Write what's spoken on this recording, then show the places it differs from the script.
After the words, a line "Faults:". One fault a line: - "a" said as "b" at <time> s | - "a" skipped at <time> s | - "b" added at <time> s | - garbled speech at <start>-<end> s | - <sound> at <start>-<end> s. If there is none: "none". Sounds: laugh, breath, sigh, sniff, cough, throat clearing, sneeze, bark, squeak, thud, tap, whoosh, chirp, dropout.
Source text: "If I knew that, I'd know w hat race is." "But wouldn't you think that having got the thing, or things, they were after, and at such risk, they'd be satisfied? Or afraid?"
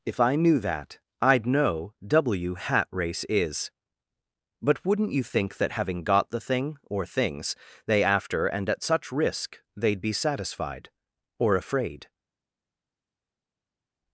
"If I knew that, I'd know w hat race is." "But wouldn't you think that having got the thing, or things, they after, and at such risk, they'd be satisfied? Or afraid?"
Faults:
- "were" skipped at 8.0 s